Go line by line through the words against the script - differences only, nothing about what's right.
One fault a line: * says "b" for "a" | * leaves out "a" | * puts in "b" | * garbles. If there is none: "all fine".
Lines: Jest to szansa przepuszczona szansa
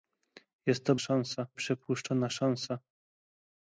all fine